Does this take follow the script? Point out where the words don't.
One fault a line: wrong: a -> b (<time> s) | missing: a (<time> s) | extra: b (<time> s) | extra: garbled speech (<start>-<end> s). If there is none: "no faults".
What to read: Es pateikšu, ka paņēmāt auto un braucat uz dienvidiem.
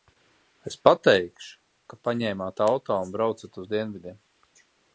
no faults